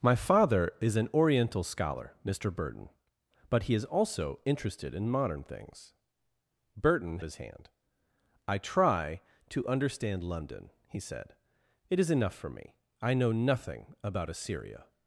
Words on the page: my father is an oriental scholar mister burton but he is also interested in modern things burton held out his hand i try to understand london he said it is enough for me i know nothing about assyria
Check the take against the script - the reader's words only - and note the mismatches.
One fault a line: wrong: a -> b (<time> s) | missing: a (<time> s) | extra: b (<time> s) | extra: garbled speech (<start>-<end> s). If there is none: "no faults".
missing: held out (7.2 s)